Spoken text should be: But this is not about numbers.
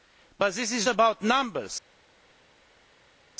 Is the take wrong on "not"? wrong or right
wrong